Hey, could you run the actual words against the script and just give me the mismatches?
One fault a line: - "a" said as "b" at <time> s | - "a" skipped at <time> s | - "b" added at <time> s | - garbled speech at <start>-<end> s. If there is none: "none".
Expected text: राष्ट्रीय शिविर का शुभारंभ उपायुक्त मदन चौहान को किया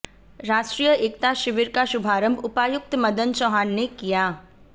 - "एकता" added at 0.9 s
- "को" said as "ने" at 3.7 s